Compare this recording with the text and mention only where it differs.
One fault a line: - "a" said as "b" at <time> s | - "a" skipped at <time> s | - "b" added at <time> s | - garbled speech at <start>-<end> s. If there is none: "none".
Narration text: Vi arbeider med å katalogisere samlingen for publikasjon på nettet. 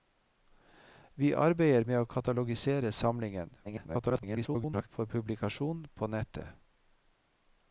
- garbled speech at 3.6-4.9 s